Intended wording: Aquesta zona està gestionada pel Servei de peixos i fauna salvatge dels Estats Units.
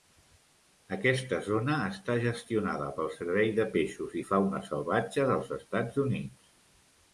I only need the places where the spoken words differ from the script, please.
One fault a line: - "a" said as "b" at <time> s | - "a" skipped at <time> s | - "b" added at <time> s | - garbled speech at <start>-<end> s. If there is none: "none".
none